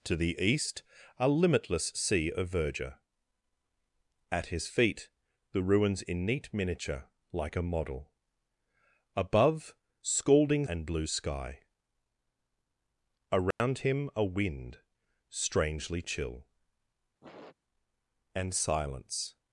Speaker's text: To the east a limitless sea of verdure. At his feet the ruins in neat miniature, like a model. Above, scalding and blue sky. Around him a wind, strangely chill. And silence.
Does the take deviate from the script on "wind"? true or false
false